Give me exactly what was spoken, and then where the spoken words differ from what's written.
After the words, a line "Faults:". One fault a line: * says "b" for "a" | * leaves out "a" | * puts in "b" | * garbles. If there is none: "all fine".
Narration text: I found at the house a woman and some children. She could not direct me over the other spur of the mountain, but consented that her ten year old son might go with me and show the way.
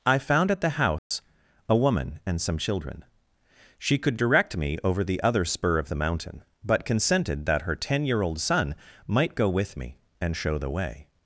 I found at the house a woman and some children. She could direct me over the other spur of the mountain, but consented that her ten year old son might go with me and show the way.
Faults:
* leaves out "not"